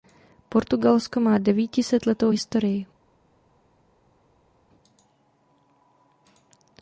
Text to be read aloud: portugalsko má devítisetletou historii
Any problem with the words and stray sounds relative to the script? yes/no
no